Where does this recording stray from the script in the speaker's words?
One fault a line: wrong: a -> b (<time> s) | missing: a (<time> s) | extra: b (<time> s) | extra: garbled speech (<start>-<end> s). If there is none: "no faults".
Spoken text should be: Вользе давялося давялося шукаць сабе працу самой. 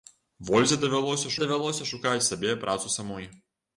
no faults